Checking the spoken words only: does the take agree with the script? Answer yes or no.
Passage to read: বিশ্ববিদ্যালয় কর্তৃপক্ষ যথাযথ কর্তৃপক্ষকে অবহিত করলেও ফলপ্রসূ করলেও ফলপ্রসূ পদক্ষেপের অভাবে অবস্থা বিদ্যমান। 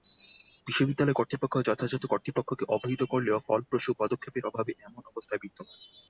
no